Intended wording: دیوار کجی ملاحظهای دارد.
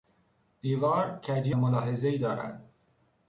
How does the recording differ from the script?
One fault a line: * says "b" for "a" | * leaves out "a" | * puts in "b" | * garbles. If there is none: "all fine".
all fine